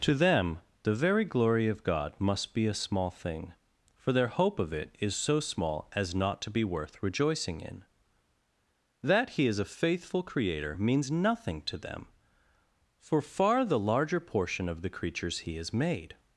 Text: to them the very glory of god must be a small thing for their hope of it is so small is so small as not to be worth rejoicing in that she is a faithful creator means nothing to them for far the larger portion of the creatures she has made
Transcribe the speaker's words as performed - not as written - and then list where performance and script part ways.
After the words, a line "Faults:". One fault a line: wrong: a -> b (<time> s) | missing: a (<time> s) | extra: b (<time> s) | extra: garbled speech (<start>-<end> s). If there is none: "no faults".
to them the very glory of god must be a small thing for their hope of it is so small as not to be worth rejoicing in that he is a faithful creator means nothing to them for far the larger portion of the creatures he has made
Faults:
missing: is so small (5.9 s)
wrong: she -> he (9.3 s)
wrong: she -> he (15.4 s)